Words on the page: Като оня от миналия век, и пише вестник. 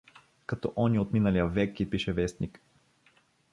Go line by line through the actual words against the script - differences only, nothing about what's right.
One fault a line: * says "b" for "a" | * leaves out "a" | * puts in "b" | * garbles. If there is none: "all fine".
all fine